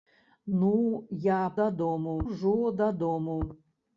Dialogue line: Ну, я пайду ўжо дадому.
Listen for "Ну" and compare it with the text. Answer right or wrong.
right